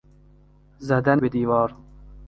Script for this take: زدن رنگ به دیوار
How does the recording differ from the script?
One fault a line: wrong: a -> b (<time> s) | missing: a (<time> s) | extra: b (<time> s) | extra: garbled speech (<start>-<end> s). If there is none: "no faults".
missing: رنگ (1.2 s)